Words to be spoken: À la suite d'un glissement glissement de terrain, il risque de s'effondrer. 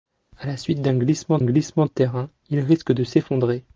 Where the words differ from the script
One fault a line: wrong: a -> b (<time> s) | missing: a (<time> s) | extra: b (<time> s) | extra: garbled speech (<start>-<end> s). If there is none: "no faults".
no faults